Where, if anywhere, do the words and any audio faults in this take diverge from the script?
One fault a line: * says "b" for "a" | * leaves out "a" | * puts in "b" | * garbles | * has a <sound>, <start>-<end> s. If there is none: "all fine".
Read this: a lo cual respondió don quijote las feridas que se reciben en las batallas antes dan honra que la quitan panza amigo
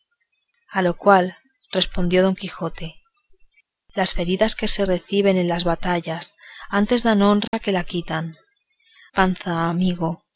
* has a dropout, 7.5-7.5 s